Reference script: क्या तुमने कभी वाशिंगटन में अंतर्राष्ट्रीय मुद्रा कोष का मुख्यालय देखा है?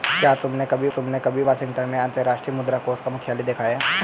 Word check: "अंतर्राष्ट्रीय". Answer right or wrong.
right